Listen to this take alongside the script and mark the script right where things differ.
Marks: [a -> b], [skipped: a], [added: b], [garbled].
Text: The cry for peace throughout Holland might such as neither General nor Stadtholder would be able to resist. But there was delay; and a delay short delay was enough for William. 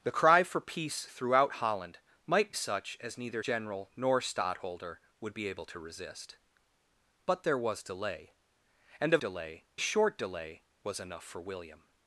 The cry for peace throughout Holland might such as neither General nor Stadtholder would be able to resist. But there was delay; and a delay short delay was enough for William.